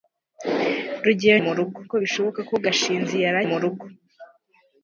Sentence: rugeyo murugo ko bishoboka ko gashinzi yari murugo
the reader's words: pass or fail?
pass